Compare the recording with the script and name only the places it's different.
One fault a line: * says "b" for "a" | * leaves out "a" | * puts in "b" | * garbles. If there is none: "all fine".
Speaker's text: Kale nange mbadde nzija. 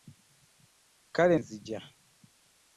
* leaves out "nange mbadde"